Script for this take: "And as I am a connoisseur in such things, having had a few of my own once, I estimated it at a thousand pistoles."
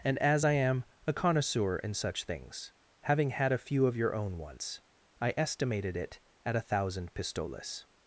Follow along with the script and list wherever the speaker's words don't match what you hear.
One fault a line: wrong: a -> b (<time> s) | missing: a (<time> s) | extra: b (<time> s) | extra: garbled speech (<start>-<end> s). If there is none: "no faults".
wrong: my -> your (4.0 s)